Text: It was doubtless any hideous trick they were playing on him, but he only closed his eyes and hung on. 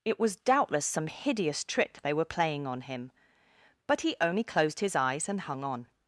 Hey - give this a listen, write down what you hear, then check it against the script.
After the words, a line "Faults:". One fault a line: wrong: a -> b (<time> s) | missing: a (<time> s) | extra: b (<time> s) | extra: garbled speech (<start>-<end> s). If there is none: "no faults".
It was doubtless some hideous trick they were playing on him, but he only closed his eyes and hung on.
Faults:
wrong: any -> some (0.8 s)